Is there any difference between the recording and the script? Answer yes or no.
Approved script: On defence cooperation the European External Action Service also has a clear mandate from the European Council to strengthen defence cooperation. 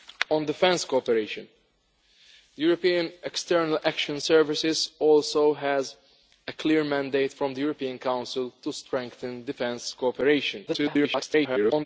yes